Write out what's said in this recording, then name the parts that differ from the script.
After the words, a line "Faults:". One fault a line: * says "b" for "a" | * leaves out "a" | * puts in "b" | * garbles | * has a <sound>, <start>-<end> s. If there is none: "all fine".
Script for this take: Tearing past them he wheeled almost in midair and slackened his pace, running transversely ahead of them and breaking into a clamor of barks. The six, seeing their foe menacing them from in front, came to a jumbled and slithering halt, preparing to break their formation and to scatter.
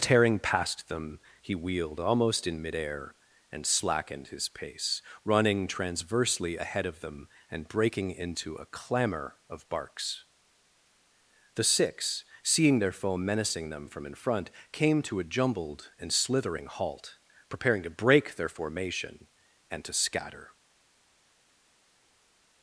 Tearing past them he wheeled almost in midair and slackened his pace, running transversely ahead of them and breaking into a clamor of barks. The six, seeing their foe menacing them from in front, came to a jumbled and slithering halt, preparing to break their formation and to scatter.
Faults:
all fine